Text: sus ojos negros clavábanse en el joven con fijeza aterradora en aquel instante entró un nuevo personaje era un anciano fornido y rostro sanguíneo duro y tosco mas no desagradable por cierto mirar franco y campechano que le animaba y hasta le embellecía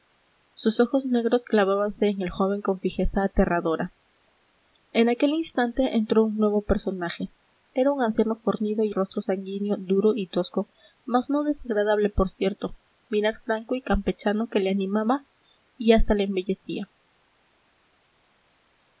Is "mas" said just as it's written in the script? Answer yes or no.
yes